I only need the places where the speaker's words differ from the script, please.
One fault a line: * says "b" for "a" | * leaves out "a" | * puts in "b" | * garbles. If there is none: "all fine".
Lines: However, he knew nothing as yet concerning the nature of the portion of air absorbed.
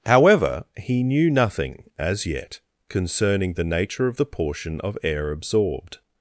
all fine